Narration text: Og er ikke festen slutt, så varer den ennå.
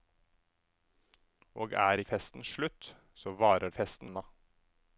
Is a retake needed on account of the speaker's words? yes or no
yes